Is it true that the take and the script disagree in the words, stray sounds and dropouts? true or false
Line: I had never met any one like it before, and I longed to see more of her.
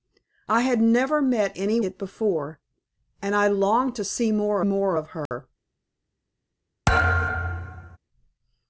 true